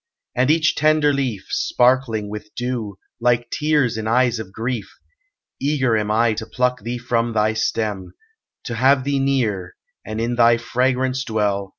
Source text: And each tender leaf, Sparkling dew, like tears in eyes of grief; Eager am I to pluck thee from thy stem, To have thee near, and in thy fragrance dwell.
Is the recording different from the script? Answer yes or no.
yes